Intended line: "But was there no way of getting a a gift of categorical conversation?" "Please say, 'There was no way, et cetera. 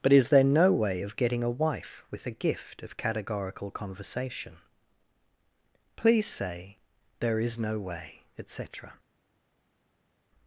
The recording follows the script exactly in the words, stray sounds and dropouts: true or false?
false